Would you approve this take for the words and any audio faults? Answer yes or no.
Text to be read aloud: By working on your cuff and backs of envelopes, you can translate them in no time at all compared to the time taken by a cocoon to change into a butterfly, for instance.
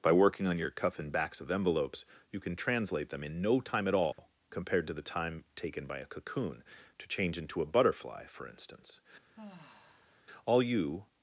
no